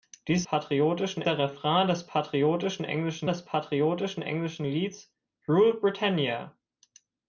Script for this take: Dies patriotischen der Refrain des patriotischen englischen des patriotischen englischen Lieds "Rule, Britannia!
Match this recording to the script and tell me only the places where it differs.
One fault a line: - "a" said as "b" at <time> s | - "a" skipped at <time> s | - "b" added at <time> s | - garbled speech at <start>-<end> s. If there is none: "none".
none